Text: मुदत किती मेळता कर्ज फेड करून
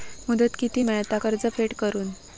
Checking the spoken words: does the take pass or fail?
pass